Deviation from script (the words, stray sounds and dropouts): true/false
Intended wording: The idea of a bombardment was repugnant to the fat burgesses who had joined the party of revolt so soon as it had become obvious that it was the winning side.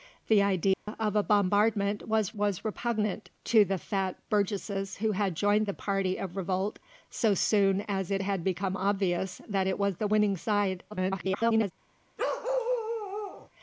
true